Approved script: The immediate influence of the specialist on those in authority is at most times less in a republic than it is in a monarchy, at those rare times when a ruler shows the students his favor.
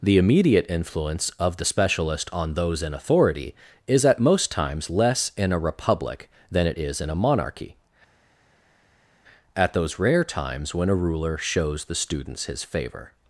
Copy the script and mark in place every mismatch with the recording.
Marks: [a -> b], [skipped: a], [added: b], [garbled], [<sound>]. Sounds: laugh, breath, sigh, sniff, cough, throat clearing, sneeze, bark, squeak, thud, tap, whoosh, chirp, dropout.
The immediate influence of the specialist on those in authority is at most times less in a republic than it is in a monarchy, at those rare times when a ruler shows the students his favor.